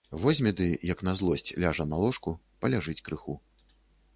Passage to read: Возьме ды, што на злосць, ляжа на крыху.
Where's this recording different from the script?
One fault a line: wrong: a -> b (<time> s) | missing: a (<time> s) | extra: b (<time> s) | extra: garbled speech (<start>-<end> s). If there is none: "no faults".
wrong: што -> як (0.9 s)
extra: ложку паляжыць (2.0 s)